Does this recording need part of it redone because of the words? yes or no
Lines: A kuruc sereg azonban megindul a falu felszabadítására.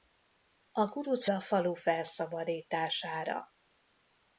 yes